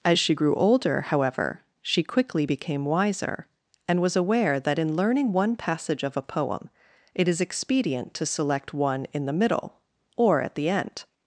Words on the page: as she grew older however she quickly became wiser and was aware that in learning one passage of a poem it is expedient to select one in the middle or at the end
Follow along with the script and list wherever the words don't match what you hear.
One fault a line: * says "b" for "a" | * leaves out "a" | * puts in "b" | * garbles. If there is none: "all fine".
all fine